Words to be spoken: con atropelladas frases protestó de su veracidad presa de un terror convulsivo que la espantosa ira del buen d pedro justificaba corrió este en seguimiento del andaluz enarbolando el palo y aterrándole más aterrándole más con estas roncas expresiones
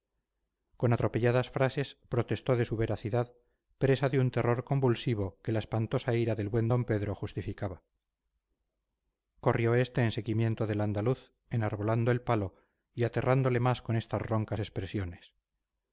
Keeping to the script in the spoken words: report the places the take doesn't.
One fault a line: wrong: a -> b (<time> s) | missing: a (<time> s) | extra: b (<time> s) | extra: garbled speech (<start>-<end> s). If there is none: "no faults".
missing: aterrándole más (13.8 s)